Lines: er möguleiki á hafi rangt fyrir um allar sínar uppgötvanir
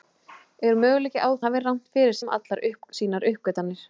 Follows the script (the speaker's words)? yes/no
yes